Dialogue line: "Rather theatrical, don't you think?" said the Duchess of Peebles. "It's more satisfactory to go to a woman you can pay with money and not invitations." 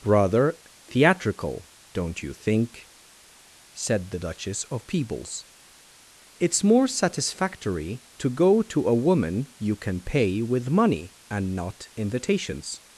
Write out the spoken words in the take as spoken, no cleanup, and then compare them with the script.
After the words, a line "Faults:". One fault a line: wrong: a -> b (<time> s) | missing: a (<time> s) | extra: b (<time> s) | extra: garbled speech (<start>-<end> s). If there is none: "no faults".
"Rather theatrical, don't you think?" said the Duchess of Peebles. "It's more satisfactory to go to a woman you can pay with money and not invitations."
Faults:
no faults